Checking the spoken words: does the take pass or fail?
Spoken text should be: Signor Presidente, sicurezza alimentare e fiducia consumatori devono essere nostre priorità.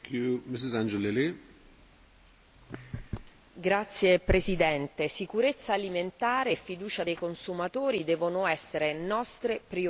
fail